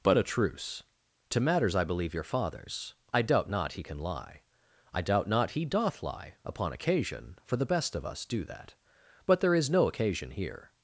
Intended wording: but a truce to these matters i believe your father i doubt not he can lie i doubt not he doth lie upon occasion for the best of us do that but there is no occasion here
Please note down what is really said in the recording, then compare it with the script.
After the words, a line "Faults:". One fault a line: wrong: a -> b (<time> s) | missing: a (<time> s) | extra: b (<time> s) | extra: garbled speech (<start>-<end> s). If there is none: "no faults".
but a truce to matters i believe your fathers i doubt not he can lie i doubt not he doth lie upon occasion for the best of us do that but there is no occasion here
Faults:
missing: these (1.4 s)
wrong: father -> fathers (2.2 s)